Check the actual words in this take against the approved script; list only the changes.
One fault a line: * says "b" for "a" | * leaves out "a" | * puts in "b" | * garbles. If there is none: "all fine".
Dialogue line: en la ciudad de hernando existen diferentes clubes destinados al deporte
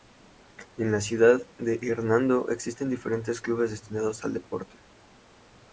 all fine